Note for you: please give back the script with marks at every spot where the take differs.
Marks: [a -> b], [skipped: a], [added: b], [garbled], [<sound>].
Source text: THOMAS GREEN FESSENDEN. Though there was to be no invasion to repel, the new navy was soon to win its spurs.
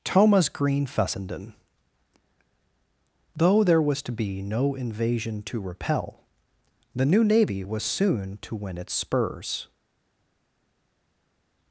THOMAS GREEN FESSENDEN. Though there was to be no invasion to repel, the new navy was soon to win its spurs.